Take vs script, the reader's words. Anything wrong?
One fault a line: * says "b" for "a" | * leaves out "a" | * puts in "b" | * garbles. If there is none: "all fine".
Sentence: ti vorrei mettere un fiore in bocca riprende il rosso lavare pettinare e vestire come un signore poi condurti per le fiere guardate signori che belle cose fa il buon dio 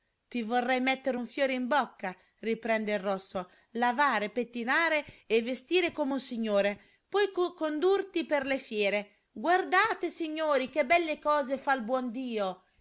all fine